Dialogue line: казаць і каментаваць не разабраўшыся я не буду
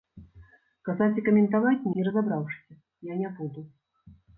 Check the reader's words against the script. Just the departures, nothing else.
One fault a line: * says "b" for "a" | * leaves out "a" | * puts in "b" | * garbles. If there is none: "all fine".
all fine